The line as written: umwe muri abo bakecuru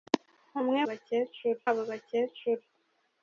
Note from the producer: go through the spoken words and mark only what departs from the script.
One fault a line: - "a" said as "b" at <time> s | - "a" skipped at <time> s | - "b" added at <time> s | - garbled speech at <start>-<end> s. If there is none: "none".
- "muri" said as "bakecuru" at 0.9 s